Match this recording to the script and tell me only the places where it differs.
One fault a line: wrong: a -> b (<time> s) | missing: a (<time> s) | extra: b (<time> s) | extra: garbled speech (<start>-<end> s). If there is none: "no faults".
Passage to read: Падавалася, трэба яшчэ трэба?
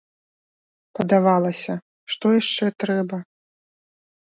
wrong: трэба -> што (2.1 s)